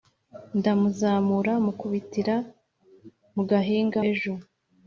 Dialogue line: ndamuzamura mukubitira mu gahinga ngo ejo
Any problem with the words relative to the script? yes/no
yes